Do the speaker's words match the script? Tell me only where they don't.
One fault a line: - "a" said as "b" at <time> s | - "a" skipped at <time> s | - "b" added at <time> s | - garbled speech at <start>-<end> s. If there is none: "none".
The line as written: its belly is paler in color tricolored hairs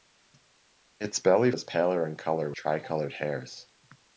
none